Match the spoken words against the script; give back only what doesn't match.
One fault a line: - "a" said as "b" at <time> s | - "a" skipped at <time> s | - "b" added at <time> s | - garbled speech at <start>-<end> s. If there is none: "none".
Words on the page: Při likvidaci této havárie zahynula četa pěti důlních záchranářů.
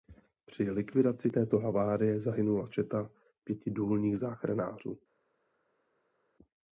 none